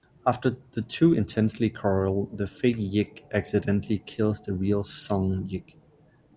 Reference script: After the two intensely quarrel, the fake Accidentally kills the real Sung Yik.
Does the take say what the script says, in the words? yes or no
no